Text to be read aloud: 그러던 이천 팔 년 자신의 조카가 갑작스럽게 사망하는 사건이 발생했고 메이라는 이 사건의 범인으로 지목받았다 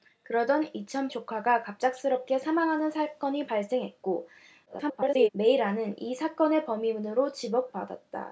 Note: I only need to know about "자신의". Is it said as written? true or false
false